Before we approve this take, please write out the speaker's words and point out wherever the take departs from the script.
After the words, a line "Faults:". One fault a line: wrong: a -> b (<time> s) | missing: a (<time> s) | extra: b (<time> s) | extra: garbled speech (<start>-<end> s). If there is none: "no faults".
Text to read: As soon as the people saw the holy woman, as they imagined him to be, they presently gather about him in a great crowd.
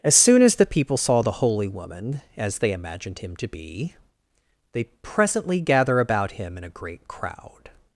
As soon as the people saw the holy woman, as they imagined him to be, they presently gather about him in a great crowd.
Faults:
no faults